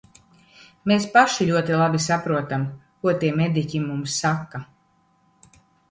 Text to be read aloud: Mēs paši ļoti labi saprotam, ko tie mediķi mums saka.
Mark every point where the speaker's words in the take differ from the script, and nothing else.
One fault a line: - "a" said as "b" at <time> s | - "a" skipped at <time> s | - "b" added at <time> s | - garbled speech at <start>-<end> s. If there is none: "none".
none